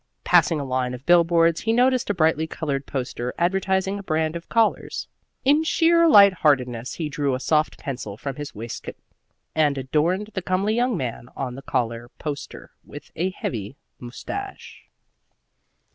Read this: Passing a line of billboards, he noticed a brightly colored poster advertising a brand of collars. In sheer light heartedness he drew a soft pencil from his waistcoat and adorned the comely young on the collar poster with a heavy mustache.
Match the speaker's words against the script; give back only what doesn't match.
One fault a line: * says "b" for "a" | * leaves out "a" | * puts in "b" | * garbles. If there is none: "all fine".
* puts in "man"